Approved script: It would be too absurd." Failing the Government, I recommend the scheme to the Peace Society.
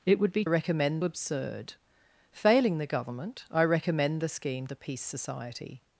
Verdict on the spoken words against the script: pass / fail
fail